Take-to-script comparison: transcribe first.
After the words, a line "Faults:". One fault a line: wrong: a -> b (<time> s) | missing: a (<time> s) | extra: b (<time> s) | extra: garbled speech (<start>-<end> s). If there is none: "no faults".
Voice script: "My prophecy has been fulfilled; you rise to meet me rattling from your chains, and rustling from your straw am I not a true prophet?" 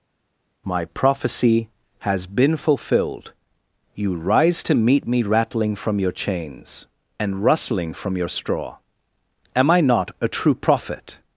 "My prophecy has been fulfilled; you rise to meet me rattling from your chains, and rustling from your straw am I not a true prophet?"
Faults:
no faults